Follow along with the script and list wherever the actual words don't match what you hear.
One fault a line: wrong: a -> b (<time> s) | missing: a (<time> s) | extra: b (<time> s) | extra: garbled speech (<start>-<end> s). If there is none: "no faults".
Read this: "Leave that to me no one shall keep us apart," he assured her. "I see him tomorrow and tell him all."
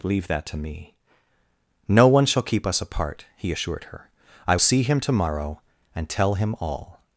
no faults